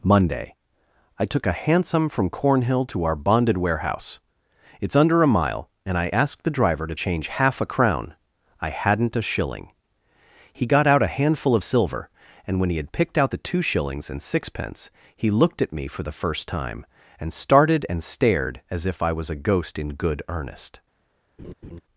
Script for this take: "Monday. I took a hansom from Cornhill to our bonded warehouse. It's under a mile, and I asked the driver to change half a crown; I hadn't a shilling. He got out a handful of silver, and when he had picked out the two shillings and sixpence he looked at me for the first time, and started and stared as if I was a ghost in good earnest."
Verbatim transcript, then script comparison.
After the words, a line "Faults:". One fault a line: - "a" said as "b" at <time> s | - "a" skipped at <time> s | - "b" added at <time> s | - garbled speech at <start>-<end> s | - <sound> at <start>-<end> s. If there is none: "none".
"Monday. I took a hansom from Cornhill to our bonded warehouse. It's under a mile, and I asked the driver to change half a crown; I hadn't a shilling. He got out a handful of silver, and when he had picked out the two shillings and sixpence he looked at me for the first time, and started and stared as if I was a ghost in good earnest."
Faults:
- laugh at 21.4-21.8 s